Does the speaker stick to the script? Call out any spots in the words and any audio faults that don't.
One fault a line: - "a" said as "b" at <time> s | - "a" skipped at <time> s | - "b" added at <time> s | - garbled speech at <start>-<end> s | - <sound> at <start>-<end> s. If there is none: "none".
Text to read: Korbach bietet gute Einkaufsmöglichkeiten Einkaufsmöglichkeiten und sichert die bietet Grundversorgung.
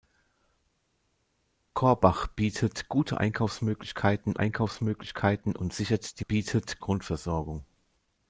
none